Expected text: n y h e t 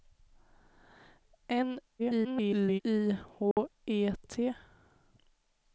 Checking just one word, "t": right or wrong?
right